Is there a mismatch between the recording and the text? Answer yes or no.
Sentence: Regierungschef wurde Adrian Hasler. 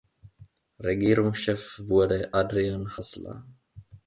no